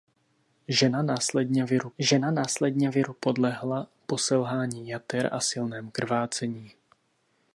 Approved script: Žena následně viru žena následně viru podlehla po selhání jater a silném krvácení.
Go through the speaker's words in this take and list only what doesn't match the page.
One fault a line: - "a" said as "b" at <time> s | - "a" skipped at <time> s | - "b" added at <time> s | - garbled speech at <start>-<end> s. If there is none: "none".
none